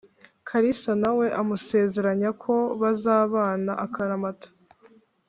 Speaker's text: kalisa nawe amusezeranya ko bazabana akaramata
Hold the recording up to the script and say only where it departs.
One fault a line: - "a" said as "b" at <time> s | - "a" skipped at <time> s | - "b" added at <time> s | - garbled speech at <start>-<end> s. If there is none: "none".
none